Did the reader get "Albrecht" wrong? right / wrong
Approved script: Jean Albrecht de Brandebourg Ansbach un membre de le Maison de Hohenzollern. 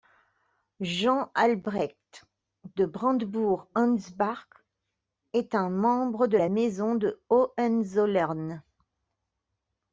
right